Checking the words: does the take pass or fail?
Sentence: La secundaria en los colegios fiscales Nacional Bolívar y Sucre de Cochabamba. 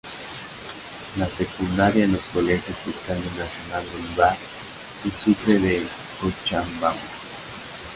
pass